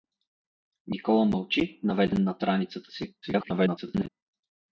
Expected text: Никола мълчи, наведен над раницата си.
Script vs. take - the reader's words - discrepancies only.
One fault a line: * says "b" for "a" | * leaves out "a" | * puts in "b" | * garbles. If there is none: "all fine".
* garbles